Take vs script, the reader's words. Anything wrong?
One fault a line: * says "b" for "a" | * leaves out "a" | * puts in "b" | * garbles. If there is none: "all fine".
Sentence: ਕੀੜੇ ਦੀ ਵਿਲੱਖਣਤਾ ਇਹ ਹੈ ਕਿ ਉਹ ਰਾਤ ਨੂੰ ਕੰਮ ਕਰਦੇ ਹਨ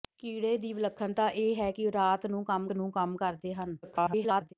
* puts in "ਨੂੰ ਕੰਮ"
* garbles